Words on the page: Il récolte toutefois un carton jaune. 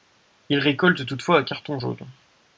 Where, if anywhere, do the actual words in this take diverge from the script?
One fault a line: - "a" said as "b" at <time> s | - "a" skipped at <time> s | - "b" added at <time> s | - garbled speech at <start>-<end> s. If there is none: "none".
none